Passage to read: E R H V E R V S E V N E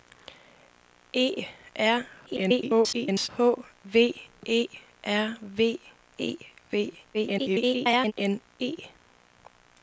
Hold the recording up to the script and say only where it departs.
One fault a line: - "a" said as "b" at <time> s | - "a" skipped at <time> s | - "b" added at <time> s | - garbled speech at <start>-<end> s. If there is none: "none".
- garbled speech at 2.3-3.3 s
- "S" skipped at 5.8 s
- garbled speech at 7.1-8.1 s